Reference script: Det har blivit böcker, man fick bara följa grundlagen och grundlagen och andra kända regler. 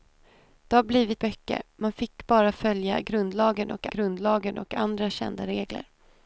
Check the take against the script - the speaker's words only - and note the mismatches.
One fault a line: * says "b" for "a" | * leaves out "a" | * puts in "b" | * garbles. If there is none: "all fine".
all fine